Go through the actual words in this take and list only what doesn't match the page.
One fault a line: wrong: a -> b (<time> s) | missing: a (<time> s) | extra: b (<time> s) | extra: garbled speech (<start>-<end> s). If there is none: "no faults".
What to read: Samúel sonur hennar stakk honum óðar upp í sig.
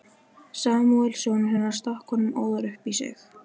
no faults